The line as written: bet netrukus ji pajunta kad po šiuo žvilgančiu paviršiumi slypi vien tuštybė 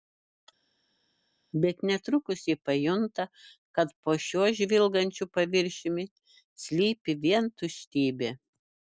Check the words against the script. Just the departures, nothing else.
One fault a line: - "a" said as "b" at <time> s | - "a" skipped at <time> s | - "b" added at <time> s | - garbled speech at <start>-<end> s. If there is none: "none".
none